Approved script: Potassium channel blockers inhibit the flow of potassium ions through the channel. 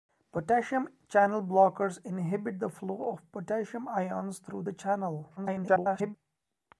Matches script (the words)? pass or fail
fail